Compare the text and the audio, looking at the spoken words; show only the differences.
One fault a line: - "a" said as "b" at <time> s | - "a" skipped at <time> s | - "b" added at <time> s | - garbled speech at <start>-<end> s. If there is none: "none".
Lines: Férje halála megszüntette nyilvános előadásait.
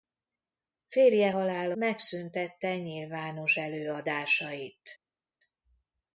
none